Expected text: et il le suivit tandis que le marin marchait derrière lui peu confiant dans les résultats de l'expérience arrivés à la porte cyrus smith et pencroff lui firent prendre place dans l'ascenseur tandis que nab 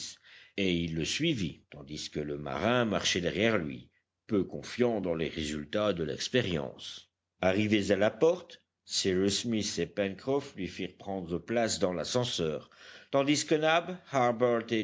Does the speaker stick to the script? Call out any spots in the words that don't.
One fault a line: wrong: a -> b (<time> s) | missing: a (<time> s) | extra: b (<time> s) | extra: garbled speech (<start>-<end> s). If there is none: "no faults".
no faults